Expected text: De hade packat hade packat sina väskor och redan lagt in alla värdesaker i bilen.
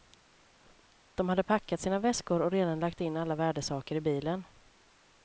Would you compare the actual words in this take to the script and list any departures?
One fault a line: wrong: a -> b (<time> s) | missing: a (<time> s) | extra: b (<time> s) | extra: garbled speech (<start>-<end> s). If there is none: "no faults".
missing: hade packat (1.8 s)